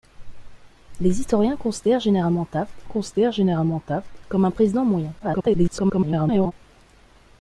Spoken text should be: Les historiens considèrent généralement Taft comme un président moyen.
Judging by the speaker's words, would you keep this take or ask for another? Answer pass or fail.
fail